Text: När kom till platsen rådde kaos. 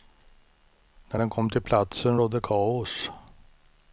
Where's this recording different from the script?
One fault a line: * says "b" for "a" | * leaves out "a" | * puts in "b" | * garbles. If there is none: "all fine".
* puts in "den"